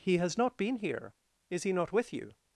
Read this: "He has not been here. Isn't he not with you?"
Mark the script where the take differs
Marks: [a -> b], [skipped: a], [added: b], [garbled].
"He has not been here. [Isn't -> Is] he not with you?"